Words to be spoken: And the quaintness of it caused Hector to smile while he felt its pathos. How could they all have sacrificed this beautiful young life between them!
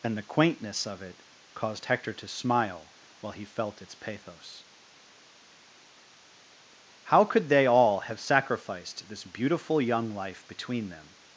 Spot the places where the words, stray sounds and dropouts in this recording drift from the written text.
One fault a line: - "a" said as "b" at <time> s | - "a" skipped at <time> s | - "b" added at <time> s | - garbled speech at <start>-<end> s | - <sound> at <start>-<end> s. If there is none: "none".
none